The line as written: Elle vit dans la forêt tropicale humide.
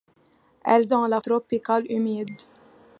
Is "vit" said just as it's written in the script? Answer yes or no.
no